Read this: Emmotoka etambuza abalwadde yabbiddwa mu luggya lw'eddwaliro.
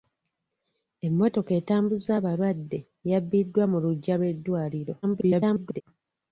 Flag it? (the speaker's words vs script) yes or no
yes